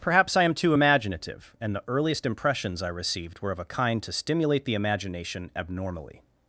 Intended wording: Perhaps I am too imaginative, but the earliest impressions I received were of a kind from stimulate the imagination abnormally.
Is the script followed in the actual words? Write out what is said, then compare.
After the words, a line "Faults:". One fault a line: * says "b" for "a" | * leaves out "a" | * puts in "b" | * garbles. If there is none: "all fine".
Perhaps I am too imaginative, and the earliest impressions I received were of a kind to stimulate the imagination abnormally.
Faults:
* says "and" for "but"
* says "to" for "from"